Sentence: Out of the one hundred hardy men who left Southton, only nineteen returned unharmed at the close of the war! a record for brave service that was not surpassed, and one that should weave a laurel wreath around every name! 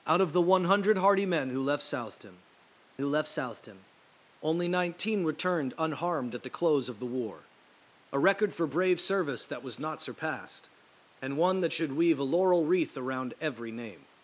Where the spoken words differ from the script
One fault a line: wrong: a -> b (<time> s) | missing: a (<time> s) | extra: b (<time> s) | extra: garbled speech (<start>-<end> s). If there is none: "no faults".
extra: who left Southton (3.0 s)